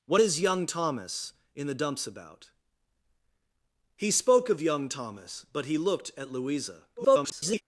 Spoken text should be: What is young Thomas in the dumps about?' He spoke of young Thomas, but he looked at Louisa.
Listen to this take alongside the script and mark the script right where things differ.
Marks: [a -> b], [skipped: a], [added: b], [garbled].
What is young Thomas in the dumps about?' He spoke of young Thomas, but he looked at Louisa. [garbled]